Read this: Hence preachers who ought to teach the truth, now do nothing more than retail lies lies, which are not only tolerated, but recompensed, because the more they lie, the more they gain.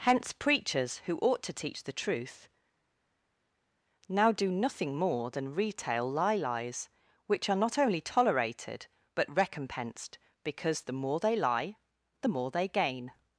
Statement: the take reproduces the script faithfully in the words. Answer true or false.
false